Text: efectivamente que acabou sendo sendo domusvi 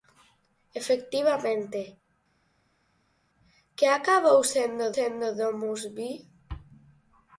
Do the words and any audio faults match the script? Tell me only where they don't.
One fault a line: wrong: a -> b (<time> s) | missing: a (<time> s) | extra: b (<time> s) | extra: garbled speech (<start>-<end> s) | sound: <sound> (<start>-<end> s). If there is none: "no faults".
no faults